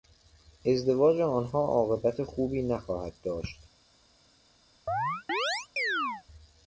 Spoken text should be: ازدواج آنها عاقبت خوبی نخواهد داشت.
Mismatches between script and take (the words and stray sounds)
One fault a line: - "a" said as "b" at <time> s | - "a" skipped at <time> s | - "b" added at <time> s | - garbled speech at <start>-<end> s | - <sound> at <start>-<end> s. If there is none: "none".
- chirp at 4.9-6.2 s